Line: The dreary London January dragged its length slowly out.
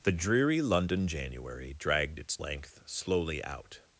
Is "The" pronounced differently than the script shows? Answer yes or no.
no